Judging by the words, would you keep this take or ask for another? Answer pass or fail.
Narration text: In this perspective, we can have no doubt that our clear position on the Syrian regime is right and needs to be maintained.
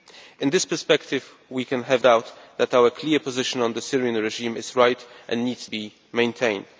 fail